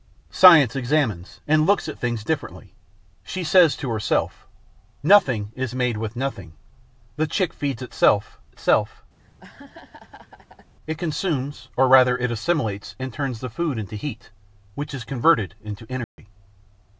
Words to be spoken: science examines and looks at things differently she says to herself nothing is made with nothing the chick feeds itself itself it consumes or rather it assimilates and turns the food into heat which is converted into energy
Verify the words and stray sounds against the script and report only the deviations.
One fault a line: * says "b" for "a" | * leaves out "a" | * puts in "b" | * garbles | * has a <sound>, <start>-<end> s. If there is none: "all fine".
* has a laugh, 9.2-10.7 s
* has a dropout, 16.0-16.2 s